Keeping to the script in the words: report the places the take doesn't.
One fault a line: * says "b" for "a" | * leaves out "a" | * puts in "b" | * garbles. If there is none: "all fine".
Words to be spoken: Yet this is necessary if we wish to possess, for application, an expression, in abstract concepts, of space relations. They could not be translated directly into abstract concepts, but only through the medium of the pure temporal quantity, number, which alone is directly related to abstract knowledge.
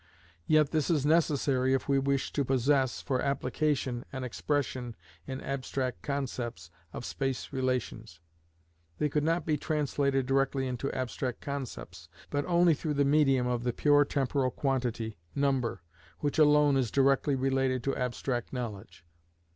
all fine